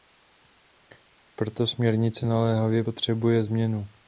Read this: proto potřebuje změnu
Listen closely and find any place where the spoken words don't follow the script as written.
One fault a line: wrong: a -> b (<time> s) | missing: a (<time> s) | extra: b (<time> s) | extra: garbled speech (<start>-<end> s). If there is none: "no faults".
extra: směrnice naléhavě (1.7 s)